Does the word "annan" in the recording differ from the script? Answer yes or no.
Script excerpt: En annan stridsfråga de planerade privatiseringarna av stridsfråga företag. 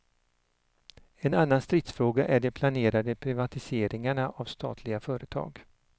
no